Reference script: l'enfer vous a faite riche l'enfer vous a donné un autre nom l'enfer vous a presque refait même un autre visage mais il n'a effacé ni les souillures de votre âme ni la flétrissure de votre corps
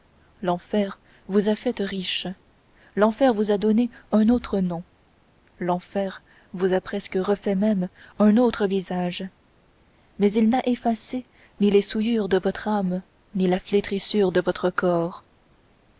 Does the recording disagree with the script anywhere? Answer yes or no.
no